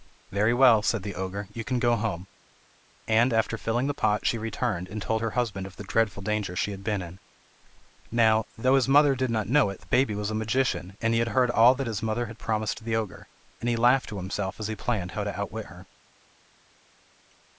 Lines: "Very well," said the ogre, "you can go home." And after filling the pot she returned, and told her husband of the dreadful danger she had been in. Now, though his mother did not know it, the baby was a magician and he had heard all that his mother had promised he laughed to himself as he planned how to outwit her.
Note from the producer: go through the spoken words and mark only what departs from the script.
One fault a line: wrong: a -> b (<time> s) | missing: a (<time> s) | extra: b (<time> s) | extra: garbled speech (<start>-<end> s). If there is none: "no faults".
extra: the ogre and (12.8 s)